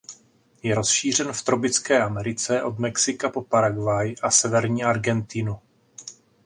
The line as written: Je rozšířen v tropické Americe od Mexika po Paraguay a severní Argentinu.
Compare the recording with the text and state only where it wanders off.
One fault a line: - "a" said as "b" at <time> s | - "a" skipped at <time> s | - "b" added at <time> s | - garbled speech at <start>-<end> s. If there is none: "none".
none